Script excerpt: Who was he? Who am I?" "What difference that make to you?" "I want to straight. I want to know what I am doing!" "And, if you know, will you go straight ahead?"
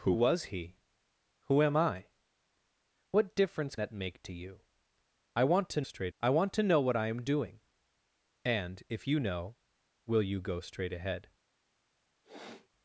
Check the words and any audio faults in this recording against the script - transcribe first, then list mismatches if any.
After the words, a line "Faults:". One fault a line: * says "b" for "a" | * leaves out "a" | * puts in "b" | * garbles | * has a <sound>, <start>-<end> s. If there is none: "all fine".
Who was he? Who am I?" "What difference that make to you?" "I want to straight. I want to know what I am doing!" "And, if you know, will you go straight ahead?"
Faults:
* has a sniff, 12.2-12.7 s